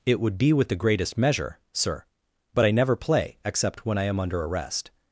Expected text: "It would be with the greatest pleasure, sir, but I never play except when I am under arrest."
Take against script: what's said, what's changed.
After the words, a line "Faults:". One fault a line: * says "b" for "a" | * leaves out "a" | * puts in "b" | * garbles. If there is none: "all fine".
"It would be with the greatest measure, sir, but I never play except when I am under arrest."
Faults:
* says "measure" for "pleasure"